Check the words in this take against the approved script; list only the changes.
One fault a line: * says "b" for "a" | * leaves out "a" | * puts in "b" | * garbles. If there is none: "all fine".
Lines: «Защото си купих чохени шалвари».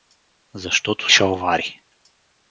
* leaves out "си купих чохени"